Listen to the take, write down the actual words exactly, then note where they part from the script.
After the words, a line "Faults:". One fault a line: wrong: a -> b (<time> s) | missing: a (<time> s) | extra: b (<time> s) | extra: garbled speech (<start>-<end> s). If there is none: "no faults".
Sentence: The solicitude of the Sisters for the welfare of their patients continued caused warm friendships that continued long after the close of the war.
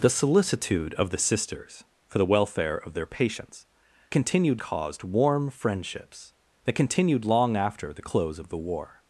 The solicitude of the Sisters for the welfare of their patients continued caused warm friendships that continued long after the close of the war.
Faults:
no faults